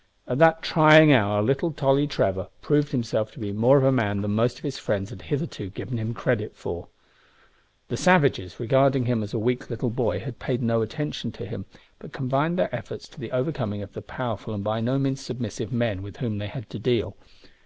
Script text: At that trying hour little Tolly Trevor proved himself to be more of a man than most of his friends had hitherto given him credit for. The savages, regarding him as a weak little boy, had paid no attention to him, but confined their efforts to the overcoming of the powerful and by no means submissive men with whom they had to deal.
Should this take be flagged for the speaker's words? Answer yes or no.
no